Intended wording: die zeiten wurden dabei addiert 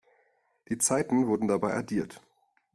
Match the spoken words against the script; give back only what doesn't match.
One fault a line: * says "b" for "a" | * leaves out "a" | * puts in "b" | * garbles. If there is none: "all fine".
all fine